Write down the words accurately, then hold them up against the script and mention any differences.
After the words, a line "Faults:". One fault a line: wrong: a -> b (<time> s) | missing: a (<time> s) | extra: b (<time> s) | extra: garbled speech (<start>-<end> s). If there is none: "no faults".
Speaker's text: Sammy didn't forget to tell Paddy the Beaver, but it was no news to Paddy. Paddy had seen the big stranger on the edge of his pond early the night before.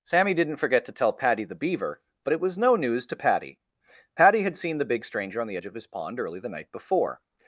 Sammy didn't forget to tell Paddy the Beaver, but it was no news to Paddy. Paddy had seen the big stranger on the edge of his pond early the night before.
Faults:
no faults